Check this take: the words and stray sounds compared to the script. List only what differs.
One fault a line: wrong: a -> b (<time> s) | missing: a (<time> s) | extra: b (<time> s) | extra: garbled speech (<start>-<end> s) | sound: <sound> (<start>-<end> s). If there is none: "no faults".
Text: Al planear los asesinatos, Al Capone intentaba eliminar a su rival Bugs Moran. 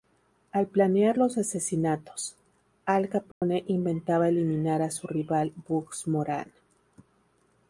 sound: dropout (3.3-3.4 s)